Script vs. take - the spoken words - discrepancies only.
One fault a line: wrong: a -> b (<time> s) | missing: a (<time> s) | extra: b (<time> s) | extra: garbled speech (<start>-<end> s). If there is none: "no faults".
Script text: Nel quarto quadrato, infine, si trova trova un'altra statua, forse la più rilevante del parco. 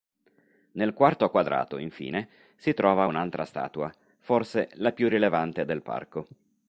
missing: trova (3.0 s)